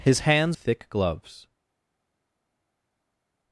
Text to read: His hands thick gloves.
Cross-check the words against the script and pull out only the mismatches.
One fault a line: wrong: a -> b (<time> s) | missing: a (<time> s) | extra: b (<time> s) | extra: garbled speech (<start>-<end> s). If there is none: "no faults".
no faults